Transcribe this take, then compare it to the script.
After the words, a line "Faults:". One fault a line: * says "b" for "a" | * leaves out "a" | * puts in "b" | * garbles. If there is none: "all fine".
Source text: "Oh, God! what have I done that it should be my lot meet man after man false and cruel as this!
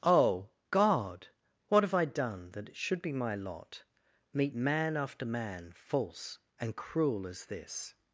"Oh, God! what have I done that it should be my lot meet man after man false and cruel as this!
Faults:
all fine